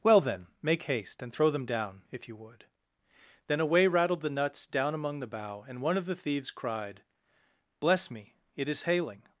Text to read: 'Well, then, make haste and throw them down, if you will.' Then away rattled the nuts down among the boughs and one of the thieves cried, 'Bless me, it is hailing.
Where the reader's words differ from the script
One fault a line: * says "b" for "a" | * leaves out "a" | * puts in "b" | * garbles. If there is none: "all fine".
* says "would" for "will"
* says "bough" for "boughs"